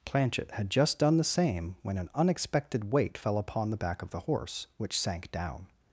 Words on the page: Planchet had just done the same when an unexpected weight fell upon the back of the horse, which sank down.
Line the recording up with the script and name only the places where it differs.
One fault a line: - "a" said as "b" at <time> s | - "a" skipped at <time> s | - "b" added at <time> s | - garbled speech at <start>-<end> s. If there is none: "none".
none